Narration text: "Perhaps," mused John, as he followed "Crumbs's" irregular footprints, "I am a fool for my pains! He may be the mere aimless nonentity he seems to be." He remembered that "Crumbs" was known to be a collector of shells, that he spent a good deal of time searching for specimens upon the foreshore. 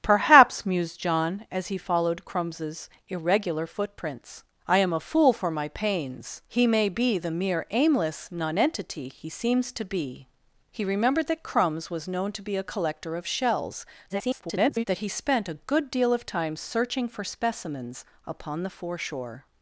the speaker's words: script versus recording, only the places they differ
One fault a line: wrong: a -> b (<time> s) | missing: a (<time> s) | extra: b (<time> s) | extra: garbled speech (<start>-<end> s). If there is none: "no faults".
extra: garbled speech (14.1-14.8 s)